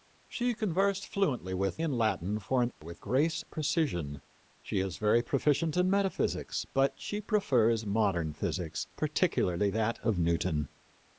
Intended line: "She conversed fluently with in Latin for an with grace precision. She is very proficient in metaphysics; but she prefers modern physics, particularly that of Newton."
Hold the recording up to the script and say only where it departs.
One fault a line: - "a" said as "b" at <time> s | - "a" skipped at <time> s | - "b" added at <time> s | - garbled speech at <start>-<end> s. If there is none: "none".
none